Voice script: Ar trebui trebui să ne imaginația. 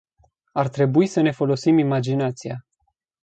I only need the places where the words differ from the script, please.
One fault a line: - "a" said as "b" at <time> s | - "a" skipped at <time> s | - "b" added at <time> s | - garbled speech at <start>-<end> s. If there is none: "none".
- "trebui" skipped at 1.1 s
- "folosim" added at 1.3 s